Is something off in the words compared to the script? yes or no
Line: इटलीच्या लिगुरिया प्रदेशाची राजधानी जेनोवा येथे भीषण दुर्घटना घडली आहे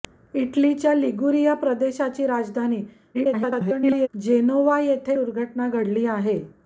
yes